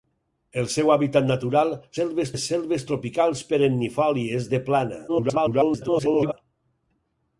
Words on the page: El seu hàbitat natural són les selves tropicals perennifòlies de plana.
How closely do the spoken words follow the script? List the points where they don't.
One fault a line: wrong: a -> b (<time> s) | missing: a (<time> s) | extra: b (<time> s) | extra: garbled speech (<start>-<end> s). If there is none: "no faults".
wrong: són -> selves (2.0 s)
extra: garbled speech (5.1-6.3 s)